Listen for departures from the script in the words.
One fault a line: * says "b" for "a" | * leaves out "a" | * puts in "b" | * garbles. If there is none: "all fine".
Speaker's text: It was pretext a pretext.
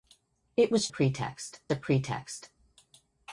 all fine